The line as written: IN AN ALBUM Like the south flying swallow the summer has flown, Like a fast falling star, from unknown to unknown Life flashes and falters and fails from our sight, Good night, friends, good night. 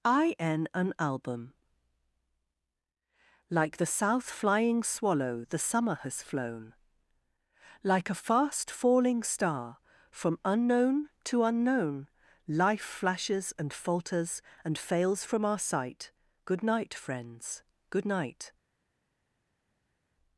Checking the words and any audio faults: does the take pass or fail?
pass